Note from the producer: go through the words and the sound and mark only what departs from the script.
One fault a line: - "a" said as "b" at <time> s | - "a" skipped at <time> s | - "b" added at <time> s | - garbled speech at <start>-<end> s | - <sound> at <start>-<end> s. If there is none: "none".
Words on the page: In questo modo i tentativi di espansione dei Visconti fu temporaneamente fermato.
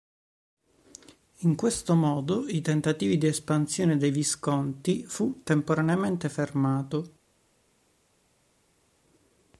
none